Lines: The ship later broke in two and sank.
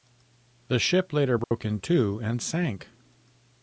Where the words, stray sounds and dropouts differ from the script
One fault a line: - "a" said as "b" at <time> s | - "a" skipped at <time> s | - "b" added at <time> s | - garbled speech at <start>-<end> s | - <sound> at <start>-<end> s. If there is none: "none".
- dropout at 1.4-1.5 s